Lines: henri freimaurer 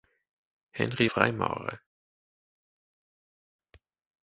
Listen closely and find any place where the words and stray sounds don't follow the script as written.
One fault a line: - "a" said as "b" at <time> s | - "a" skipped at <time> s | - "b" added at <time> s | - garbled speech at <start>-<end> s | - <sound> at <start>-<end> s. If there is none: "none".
none